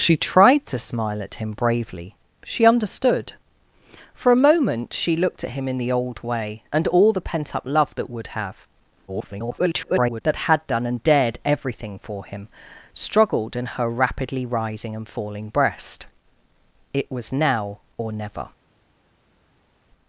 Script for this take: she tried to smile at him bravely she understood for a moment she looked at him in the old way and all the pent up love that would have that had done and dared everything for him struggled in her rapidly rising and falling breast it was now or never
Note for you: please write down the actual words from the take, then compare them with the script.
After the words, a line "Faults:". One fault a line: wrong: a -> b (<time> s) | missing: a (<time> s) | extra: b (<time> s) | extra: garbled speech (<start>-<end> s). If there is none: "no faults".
she tried to smile at him bravely she understood for a moment she looked at him in the old way and all the pent up love that would have [garbled] that had done and dared everything for him struggled in her rapidly rising and falling breast it was now or never
Faults:
extra: garbled speech (9.1-10.2 s)